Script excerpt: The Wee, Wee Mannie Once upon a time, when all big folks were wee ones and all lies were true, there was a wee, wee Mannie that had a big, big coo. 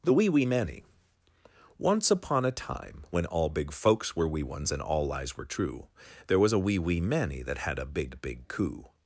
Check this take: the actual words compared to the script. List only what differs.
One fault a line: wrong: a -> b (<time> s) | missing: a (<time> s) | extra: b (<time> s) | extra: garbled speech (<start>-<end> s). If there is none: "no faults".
no faults